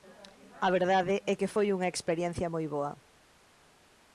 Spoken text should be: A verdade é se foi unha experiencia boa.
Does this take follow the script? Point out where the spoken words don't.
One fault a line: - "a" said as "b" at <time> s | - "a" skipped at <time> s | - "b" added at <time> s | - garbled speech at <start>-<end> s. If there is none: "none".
- "se" said as "que" at 1.4 s
- "moi" added at 2.5 s